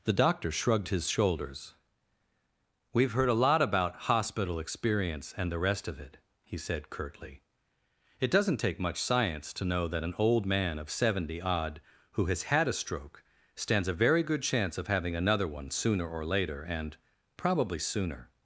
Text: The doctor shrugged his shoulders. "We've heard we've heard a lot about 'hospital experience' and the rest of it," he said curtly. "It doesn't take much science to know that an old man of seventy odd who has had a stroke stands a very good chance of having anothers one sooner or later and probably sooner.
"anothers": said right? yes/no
no